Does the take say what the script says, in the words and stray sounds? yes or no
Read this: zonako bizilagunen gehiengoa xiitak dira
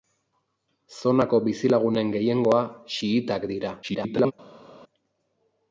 no